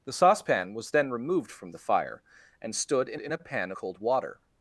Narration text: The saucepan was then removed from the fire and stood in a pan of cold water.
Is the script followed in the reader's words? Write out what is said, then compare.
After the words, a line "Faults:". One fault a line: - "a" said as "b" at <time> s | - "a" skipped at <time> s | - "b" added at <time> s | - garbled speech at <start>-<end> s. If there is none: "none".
The saucepan was then removed from the fire and stood in in a pan cold water.
Faults:
- "in" added at 3.2 s
- "of" skipped at 3.7 s